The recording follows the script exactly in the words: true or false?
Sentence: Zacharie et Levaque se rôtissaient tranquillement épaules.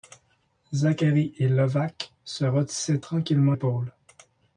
true